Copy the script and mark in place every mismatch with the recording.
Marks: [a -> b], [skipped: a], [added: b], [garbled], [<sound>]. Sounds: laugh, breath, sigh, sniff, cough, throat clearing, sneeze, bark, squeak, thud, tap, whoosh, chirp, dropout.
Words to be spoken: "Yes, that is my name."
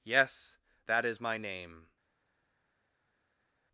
"Yes, that is my name."